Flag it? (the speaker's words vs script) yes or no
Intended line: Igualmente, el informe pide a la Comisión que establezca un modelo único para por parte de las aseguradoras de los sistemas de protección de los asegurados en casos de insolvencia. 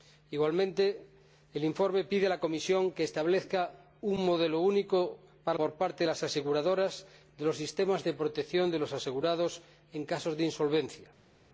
no